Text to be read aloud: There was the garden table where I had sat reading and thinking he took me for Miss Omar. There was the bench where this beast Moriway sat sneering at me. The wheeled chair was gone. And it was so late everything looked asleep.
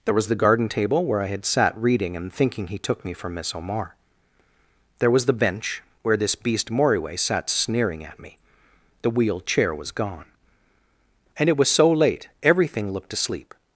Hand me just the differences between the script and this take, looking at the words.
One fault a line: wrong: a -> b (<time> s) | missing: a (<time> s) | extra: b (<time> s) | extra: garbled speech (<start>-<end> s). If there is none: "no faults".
no faults